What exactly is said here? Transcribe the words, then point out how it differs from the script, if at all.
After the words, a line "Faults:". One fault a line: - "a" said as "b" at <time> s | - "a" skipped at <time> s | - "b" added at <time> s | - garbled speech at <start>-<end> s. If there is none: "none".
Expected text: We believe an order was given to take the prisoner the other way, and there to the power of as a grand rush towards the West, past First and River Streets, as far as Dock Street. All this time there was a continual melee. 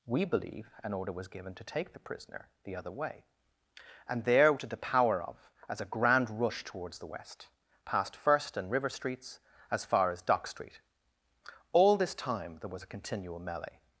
We believe an order was given to take the prisoner the other way, and there to the power of as a grand rush towards the West, past First and River Streets, as far as Dock Street. All this time there was a continual melee.
Faults:
none